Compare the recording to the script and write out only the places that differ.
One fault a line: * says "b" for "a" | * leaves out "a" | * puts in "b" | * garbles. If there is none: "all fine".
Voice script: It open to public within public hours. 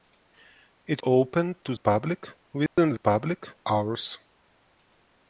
all fine